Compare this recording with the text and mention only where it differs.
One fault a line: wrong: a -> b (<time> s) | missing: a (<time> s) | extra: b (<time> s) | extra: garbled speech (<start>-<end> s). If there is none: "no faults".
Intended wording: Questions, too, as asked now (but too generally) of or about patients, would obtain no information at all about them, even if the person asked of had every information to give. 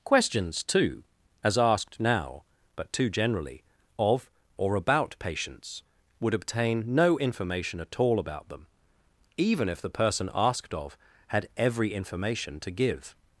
no faults